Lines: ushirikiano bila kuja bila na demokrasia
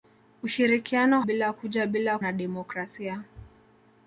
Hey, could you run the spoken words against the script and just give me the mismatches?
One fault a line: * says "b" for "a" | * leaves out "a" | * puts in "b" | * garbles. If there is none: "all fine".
all fine